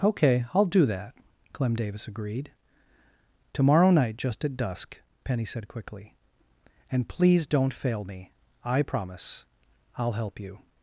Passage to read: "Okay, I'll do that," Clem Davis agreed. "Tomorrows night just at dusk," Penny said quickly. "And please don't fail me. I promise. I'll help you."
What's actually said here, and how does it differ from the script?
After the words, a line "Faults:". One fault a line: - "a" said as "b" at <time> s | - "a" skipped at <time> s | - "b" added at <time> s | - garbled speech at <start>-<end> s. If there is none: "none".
"Okay, I'll do that," Clem Davis agreed. "Tomorrow night just at dusk," Penny said quickly. "And please don't fail me. I promise. I'll help you."
Faults:
- "Tomorrows" said as "Tomorrow" at 3.5 s